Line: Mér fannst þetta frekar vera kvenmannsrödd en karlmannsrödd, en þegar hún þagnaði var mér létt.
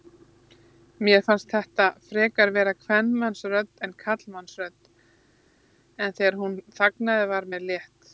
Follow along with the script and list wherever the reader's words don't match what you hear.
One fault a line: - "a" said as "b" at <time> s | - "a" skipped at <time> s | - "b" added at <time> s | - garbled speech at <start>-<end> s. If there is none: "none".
none